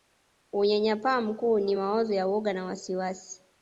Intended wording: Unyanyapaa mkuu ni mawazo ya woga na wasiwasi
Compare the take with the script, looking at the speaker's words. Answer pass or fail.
pass